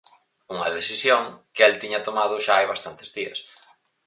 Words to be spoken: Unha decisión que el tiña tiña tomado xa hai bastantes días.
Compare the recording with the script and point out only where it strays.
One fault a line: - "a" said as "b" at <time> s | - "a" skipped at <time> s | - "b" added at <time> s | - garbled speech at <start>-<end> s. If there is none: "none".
- "tiña" skipped at 2.0 s